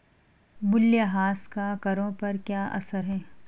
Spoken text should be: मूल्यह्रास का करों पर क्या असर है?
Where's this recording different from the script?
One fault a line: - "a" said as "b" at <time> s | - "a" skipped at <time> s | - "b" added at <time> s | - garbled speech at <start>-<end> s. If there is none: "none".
none